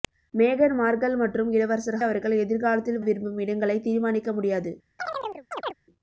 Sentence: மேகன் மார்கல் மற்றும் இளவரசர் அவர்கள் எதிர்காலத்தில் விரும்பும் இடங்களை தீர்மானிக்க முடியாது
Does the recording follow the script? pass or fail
pass